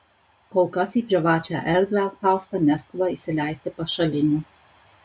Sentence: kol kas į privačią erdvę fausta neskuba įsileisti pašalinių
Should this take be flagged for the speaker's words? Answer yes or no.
no